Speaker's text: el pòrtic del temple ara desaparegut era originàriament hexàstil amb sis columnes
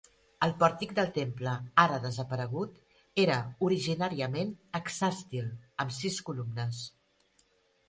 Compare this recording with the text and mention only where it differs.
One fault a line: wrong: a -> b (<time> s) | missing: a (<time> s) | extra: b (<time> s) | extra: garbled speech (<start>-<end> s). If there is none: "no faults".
no faults